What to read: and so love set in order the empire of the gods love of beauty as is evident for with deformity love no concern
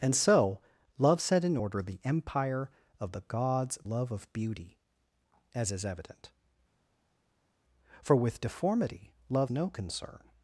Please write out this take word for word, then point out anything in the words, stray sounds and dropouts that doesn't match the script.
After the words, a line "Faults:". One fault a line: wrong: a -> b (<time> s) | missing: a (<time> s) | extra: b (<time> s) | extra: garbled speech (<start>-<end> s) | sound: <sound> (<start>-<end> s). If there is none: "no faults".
and so love set in order the empire of the gods love of beauty as is evident for with deformity love no concern
Faults:
no faults